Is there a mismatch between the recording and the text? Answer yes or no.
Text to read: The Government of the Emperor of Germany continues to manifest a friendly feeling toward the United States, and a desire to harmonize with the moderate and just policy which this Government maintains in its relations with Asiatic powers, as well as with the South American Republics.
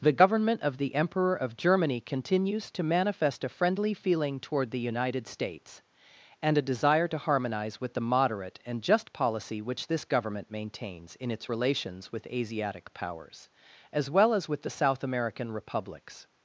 no